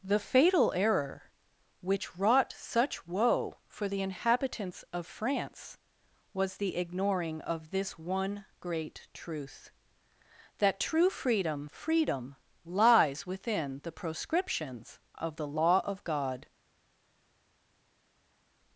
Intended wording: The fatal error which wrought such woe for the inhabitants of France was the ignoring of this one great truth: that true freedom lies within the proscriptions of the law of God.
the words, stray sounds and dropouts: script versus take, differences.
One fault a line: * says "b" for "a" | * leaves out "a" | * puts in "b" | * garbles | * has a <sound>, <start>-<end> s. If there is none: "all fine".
* puts in "freedom"